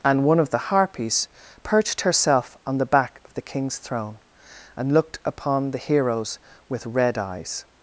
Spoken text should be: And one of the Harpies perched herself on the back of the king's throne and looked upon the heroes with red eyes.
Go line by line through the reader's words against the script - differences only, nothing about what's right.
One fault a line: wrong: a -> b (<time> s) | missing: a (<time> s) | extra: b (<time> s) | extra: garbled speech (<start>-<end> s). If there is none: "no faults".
no faults